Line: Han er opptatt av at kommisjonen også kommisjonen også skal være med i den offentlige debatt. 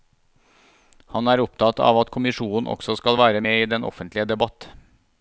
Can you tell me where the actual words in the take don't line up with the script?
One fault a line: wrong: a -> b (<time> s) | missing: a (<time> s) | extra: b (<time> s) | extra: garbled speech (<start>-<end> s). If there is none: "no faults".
missing: kommisjonen også (3.0 s)